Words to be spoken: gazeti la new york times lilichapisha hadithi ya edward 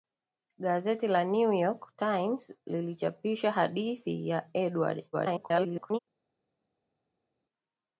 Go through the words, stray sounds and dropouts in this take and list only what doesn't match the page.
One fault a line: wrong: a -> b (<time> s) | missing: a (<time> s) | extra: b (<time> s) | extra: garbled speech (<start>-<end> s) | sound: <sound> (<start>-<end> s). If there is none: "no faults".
extra: garbled speech (5.1-6.0 s)